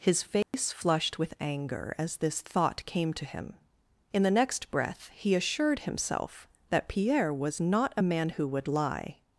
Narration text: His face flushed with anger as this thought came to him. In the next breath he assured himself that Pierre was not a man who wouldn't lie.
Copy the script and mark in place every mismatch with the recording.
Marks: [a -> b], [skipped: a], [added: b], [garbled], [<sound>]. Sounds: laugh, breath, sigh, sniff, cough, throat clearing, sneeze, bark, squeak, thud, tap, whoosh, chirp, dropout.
His face [dropout] flushed with anger as this thought came to him. In the next breath he assured himself that Pierre was not a man who [wouldn't -> would] lie.